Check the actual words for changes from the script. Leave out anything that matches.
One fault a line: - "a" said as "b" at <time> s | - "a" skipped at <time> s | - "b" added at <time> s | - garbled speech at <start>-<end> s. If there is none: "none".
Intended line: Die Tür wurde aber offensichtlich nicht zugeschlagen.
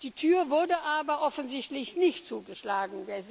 none